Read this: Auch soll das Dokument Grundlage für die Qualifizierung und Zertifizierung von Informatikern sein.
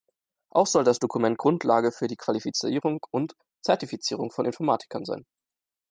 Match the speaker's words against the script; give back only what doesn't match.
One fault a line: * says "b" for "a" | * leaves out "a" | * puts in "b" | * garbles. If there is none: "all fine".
all fine